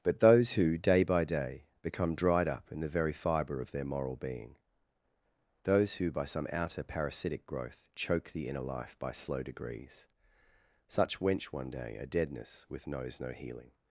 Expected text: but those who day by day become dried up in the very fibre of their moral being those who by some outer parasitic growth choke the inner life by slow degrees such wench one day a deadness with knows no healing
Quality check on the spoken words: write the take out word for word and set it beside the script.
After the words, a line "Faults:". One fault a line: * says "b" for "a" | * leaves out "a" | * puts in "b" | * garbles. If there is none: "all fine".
but those who day by day become dried up in the very fibre of their moral being those who by some outer parasitic growth choke the inner life by slow degrees such wench one day a deadness with knows no healing
Faults:
all fine